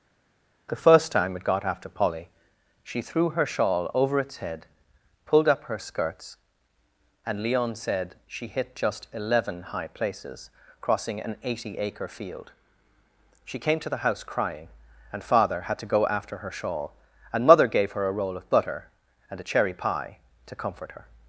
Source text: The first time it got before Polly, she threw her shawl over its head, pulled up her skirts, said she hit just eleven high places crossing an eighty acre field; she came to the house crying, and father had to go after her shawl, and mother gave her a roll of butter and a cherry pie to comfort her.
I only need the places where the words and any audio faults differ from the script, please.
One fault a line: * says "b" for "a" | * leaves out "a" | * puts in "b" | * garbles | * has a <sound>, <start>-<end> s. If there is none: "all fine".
* says "after" for "before"
* puts in "and Leon"